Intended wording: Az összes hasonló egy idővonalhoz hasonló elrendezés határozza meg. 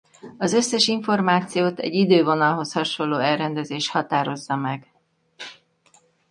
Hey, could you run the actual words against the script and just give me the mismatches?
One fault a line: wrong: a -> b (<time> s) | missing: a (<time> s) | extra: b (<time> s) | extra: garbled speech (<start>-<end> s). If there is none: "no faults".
wrong: hasonló -> információt (0.9 s)